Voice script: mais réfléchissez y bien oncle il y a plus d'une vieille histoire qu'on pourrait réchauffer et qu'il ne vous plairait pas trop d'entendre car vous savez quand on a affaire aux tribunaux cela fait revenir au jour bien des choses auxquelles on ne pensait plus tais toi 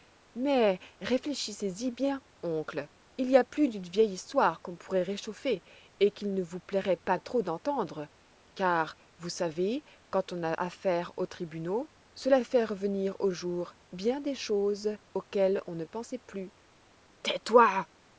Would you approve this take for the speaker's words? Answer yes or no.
yes